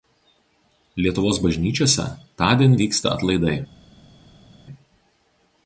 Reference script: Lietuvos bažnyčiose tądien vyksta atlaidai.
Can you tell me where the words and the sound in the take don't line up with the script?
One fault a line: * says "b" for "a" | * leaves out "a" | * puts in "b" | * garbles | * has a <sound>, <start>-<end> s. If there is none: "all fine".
all fine